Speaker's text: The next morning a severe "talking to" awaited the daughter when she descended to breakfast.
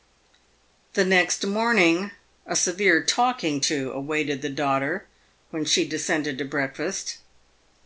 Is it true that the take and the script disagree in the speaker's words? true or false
false